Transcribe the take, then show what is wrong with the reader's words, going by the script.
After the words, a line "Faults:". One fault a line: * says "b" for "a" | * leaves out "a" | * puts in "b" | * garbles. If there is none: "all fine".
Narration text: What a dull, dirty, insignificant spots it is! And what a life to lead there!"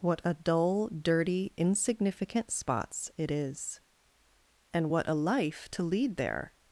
What a dull, dirty, insignificant spots it is! And what a life to lead there!"
Faults:
all fine